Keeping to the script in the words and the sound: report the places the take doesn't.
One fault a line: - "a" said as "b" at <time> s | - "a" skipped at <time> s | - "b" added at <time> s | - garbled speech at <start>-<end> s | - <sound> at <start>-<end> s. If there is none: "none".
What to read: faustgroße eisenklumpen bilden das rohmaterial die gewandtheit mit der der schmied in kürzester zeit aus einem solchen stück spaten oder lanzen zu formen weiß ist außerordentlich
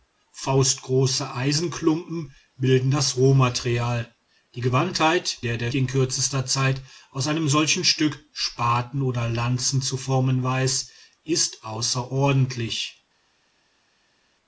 - "mit" skipped at 5.4 s
- "schmied" skipped at 5.7 s